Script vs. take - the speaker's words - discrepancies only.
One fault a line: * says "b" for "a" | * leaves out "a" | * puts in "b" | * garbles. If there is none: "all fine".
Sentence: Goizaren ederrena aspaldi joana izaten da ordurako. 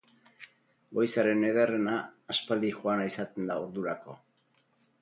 all fine